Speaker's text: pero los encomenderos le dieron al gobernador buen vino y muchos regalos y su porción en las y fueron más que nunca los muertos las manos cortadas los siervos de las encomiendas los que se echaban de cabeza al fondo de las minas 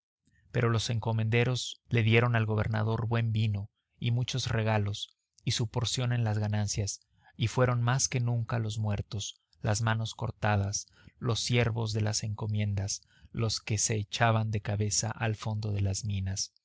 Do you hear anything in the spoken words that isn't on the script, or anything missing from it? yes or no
yes